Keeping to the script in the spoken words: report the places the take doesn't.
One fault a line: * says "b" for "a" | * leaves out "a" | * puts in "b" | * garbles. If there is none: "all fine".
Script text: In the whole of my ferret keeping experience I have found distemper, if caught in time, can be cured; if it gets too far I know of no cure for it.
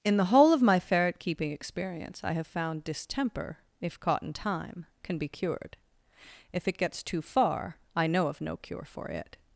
all fine